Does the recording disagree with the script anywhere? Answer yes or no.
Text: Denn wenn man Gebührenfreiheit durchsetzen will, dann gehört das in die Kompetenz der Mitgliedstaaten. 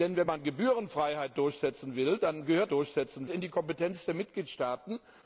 yes